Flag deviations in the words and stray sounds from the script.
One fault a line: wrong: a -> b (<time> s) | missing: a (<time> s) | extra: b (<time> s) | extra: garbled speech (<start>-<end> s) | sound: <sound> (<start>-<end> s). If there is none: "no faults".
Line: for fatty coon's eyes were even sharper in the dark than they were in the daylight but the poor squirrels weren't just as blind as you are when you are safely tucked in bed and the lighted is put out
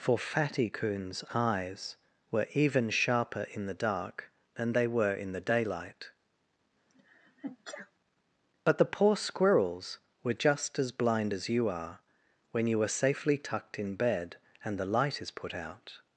sound: sneeze (6.9-7.9 s)
wrong: weren't -> were (10.2 s)
wrong: lighted -> light (14.9 s)